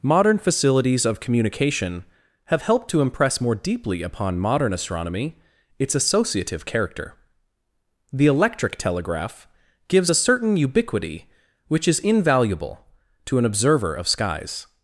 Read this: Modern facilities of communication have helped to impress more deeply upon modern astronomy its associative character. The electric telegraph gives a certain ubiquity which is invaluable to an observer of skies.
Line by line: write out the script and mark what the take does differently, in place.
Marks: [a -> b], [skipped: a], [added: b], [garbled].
Modern facilities of communication have helped to impress more deeply upon modern astronomy its associative character. The electric telegraph gives a certain ubiquity which is invaluable to an observer of skies.